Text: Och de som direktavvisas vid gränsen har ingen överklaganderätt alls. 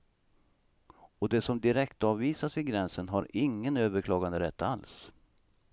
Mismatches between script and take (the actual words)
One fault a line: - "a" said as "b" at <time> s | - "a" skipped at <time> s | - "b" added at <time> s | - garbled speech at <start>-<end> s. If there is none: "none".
none